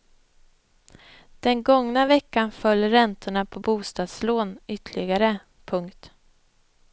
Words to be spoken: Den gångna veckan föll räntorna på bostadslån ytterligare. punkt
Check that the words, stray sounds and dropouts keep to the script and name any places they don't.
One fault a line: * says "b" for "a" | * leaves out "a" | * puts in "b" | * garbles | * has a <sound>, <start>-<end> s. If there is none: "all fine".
all fine